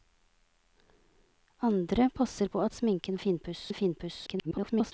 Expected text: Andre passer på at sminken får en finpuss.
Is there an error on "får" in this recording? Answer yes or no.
yes